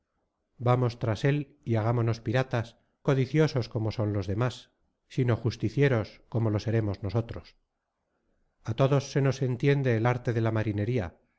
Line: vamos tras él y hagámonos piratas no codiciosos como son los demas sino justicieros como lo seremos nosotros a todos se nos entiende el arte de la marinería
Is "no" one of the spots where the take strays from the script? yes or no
yes